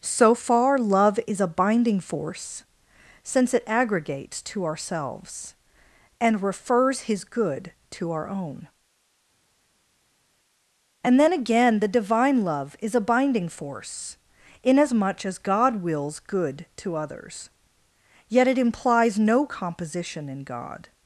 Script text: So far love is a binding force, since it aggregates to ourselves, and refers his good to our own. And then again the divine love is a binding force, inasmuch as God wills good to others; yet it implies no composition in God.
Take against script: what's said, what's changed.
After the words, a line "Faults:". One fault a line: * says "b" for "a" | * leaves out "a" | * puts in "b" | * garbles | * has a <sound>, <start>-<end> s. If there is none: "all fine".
So far love is a binding force, since it aggregates to ourselves, and refers his good to our own. And then again the divine love is a binding force, inasmuch as God wills good to others; yet it implies no composition in God.
Faults:
all fine